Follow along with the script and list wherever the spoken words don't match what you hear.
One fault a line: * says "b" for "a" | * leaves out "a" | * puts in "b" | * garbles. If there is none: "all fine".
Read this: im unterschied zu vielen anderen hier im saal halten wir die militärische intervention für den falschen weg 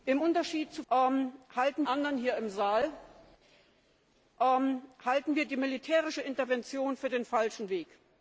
* says "halten" for "vielen"